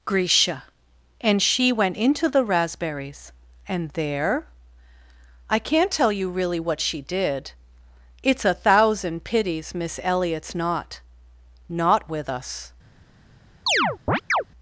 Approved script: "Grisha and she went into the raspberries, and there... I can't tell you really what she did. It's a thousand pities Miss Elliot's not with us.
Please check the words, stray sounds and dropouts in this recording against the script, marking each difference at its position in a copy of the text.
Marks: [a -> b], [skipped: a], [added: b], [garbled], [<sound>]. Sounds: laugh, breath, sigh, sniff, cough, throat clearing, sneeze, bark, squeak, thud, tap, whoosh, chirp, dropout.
"Grisha and she went into the raspberries, and there... I can't tell you really what she did. It's a thousand pities Miss Elliot's not [added: not] with us. [chirp]